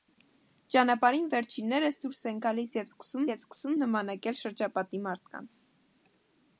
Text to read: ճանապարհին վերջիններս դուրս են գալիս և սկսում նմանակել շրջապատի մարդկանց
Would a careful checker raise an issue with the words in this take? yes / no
yes